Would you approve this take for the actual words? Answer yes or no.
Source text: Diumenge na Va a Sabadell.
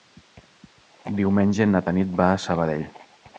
no